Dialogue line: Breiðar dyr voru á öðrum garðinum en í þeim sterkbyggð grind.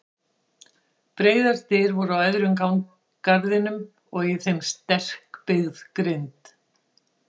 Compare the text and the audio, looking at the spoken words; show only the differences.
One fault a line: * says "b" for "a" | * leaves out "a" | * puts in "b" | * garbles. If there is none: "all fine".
* says "og" for "en"